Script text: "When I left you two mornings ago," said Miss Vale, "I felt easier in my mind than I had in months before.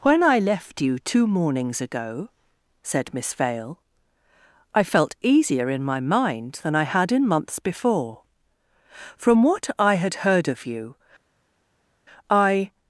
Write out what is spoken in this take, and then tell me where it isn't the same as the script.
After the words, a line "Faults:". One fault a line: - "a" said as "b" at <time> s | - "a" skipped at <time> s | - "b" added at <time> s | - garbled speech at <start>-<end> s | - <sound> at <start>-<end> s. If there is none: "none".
"When I left you two mornings ago," said Miss Vale, "I felt easier in my mind than I had in months before. From what I had heard of you, I
Faults:
- "From what I had heard of you I" added at 9.2 s